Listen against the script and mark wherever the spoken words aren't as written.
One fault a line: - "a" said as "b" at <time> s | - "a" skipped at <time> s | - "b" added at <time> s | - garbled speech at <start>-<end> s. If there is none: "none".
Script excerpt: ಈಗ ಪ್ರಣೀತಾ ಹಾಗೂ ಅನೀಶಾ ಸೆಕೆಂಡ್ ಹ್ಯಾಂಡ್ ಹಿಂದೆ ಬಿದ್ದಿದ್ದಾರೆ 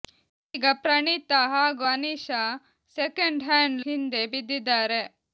none